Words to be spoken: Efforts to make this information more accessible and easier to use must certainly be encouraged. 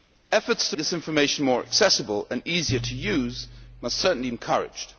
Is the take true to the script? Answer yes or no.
no